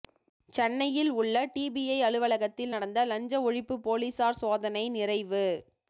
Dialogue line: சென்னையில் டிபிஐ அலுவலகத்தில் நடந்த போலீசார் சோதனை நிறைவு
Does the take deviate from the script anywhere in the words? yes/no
yes